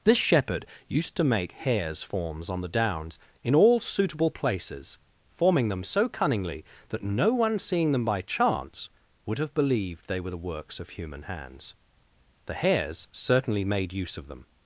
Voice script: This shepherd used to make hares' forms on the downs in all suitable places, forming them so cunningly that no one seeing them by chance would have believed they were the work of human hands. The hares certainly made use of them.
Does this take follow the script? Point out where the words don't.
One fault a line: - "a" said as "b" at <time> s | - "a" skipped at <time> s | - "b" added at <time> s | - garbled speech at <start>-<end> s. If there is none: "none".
- "work" said as "works" at 10.4 s